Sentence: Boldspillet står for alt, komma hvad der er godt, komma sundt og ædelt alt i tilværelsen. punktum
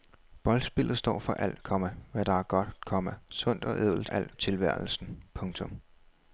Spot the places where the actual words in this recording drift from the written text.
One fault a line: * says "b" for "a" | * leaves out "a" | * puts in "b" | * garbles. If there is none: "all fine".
all fine